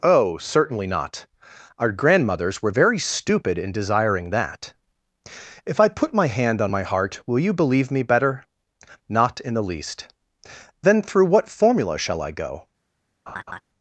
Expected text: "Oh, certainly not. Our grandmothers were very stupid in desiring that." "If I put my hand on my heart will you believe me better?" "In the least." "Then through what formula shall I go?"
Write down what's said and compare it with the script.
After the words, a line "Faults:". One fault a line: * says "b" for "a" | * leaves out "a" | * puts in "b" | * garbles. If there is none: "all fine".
"Oh, certainly not. Our grandmothers were very stupid in desiring that." "If I put my hand on my heart will you believe me better?" "Not in the least." "Then through what formula shall I go?"
Faults:
* puts in "Not"